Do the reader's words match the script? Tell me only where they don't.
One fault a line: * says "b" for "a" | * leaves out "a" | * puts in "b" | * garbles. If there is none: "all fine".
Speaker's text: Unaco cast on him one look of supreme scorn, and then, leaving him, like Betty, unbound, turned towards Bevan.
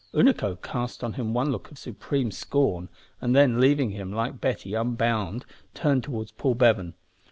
* puts in "Paul"